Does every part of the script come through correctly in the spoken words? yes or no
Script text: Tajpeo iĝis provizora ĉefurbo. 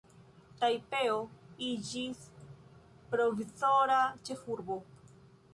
yes